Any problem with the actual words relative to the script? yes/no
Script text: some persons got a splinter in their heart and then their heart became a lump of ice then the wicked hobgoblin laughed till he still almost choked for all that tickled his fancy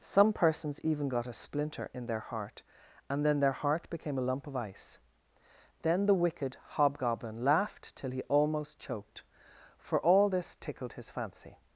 yes